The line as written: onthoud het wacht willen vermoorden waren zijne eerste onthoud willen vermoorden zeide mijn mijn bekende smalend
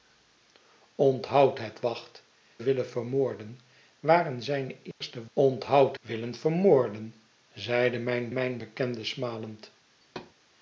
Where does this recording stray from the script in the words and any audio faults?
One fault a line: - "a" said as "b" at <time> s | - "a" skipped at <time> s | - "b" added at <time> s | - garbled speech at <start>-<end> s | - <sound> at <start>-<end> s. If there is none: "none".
- dropout at 4.9-5.0 s
- thud at 10.0-10.3 s